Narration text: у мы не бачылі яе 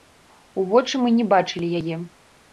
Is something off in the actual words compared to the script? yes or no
yes